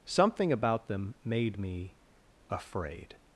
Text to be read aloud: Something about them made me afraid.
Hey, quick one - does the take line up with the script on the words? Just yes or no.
yes